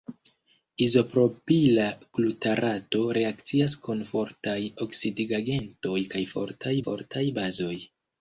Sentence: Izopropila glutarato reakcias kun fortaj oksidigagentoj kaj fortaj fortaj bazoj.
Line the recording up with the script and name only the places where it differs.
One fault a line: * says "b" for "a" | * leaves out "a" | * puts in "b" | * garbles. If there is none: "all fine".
all fine